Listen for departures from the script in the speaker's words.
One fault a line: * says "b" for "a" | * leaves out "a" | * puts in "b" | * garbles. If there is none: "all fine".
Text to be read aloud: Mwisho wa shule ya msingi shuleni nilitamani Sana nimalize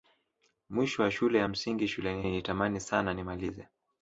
all fine